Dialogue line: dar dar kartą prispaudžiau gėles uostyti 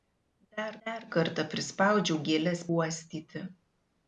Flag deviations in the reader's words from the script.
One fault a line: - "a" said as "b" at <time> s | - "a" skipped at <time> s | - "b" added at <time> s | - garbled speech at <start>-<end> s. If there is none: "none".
none